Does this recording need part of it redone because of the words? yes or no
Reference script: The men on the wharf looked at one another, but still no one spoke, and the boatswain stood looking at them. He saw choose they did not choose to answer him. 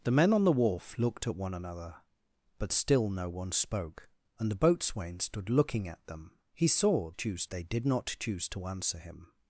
no